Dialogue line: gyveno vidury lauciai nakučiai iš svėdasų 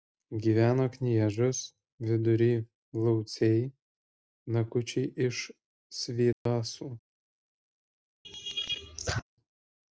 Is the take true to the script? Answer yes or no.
no